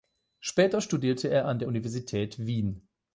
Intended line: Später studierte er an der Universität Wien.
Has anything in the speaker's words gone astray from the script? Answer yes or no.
no